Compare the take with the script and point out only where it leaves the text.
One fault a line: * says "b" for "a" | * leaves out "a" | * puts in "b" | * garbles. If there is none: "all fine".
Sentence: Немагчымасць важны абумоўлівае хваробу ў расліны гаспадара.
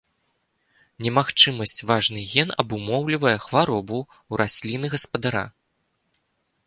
* puts in "ген"